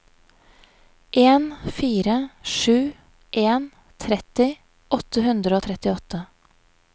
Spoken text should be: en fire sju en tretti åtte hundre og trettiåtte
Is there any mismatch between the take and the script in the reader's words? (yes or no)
no